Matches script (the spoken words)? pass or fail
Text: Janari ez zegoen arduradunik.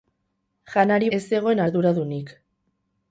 pass